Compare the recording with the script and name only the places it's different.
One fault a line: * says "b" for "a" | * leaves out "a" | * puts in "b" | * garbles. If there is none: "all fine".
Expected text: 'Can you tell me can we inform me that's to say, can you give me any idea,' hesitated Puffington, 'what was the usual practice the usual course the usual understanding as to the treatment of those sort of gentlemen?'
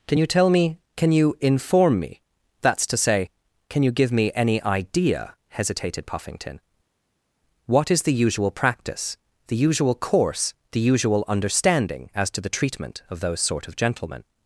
* says "you" for "we"
* says "is" for "was"